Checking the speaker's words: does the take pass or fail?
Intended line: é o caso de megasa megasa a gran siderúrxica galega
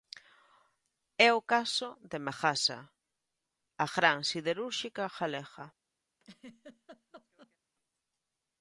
fail